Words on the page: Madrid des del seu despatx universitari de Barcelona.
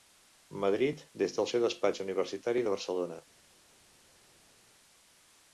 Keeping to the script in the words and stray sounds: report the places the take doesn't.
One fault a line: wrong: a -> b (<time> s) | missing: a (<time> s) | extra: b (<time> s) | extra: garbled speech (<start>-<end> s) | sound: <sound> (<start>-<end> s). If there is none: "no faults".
no faults